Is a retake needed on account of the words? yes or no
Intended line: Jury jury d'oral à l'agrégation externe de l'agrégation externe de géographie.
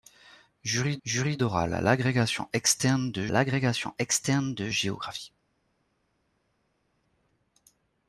no